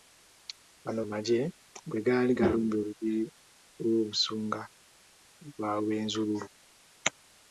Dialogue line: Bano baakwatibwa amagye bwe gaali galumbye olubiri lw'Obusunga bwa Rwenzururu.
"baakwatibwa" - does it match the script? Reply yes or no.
no